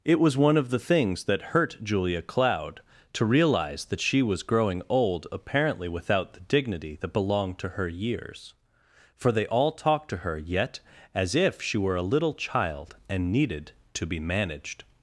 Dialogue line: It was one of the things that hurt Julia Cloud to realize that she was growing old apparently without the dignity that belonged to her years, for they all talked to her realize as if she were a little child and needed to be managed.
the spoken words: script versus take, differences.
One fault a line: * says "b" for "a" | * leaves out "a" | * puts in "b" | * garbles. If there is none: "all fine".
* says "yet" for "realize"